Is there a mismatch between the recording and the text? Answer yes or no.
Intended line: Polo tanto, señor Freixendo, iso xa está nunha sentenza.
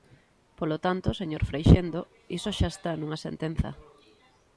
no